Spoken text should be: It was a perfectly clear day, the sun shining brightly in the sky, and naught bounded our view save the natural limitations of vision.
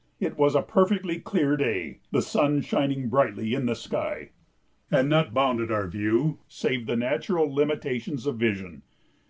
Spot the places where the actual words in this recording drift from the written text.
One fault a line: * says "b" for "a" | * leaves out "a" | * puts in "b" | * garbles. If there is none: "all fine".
all fine